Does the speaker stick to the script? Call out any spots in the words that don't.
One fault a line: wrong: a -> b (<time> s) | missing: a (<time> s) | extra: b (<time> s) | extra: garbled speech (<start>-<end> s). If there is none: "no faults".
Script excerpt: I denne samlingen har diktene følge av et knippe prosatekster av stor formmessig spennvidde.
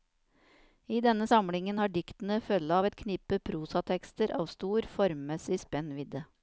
no faults